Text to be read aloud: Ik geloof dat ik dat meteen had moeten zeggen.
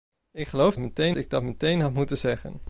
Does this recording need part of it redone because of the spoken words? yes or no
yes